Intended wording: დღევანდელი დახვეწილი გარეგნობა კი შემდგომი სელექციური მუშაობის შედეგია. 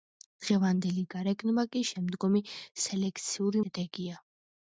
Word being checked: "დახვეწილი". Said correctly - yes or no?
no